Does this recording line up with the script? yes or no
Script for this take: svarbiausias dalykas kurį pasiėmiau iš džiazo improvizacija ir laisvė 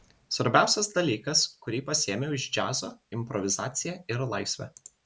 yes